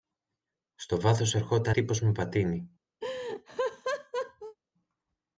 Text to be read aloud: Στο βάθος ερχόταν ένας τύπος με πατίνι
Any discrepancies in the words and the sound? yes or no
yes